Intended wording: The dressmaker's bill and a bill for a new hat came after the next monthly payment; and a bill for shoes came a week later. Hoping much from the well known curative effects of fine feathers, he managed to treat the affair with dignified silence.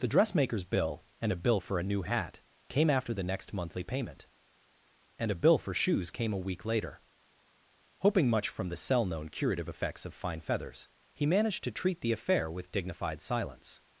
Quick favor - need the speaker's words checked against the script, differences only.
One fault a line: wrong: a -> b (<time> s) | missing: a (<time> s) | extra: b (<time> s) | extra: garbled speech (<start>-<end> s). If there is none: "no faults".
wrong: well -> cell (8.8 s)